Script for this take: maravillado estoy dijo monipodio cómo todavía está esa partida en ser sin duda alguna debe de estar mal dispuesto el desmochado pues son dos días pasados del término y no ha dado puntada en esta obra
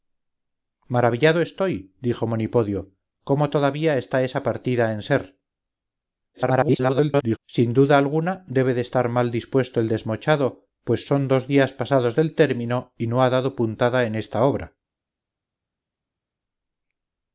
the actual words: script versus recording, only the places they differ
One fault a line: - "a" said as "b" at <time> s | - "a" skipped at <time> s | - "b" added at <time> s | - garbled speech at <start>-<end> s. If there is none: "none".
- garbled speech at 6.3-7.4 s